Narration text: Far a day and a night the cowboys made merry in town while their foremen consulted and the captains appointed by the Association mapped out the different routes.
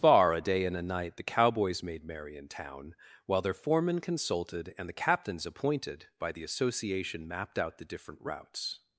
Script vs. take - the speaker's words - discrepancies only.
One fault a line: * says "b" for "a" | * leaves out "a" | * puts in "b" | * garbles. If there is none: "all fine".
all fine